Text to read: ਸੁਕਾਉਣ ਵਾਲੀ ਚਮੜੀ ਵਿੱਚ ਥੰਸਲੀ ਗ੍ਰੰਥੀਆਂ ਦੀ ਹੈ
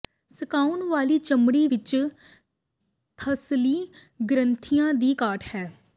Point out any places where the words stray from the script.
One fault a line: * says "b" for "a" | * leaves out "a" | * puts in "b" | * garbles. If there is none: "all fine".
* puts in "ਘਾਟ"